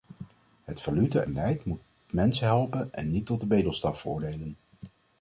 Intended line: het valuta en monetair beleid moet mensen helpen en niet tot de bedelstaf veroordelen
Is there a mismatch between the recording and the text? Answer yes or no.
yes